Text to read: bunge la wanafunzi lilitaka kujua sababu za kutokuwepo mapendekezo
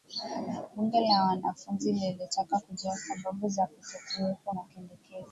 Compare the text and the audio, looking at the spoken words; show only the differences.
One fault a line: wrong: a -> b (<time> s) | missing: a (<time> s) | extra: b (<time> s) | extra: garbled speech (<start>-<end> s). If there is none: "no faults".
no faults